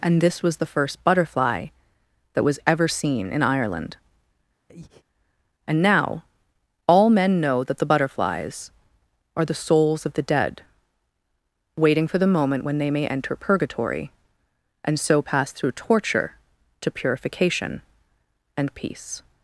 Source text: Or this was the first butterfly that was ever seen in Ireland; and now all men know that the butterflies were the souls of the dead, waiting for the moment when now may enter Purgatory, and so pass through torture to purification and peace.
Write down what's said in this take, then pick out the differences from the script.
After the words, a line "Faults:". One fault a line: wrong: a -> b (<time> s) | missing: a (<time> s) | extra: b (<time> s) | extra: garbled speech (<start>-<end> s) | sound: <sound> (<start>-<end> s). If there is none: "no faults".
And this was the first butterfly that was ever seen in Ireland; and now all men know that the butterflies are the souls of the dead, waiting for the moment when they may enter Purgatory, and so pass through torture to purification and peace.
Faults:
wrong: Or -> And (0.0 s)
sound: breath (4.7-5.0 s)
wrong: were -> are (9.3 s)
wrong: now -> they (12.8 s)